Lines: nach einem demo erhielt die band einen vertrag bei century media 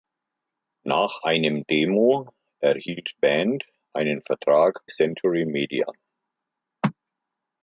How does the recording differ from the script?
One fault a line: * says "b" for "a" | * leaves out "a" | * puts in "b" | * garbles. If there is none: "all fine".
* leaves out "die"
* leaves out "bei"